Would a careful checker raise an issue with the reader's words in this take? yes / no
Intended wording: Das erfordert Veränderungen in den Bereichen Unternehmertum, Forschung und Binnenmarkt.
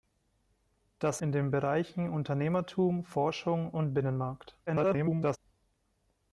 yes